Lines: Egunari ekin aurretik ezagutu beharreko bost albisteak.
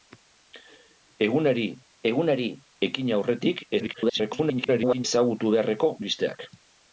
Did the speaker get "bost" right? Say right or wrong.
wrong